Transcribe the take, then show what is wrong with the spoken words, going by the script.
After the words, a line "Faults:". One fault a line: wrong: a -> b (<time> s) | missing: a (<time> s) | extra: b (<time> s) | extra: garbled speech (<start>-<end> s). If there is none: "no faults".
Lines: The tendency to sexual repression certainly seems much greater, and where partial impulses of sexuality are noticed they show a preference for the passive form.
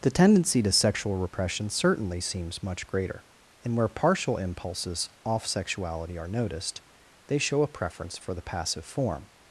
The tendency to sexual repression certainly seems much greater, and where partial impulses off sexuality are noticed they show a preference for the passive form.
Faults:
wrong: of -> off (5.2 s)